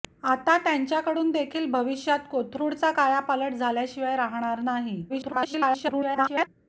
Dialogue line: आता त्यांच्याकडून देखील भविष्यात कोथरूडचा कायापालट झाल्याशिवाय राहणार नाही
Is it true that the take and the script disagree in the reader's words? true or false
true